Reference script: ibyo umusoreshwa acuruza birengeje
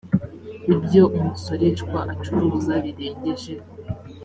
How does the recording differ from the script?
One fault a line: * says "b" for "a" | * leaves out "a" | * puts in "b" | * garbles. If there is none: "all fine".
all fine